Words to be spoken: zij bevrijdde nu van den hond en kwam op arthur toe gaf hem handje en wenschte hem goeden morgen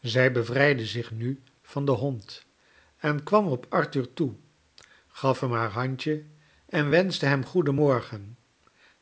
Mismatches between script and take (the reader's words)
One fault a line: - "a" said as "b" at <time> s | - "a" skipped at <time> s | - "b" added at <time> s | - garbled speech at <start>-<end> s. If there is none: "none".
- "zich" added at 0.8 s
- "haar" added at 5.5 s